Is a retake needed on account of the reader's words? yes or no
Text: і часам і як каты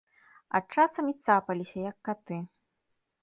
yes